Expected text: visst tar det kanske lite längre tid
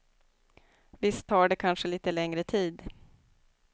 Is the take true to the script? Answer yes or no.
yes